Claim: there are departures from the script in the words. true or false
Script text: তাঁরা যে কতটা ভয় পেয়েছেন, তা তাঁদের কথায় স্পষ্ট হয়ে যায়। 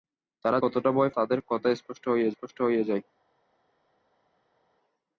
true